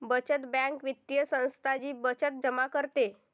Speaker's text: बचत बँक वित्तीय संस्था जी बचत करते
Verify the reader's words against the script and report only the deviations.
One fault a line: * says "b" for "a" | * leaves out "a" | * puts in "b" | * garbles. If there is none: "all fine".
* puts in "जमा"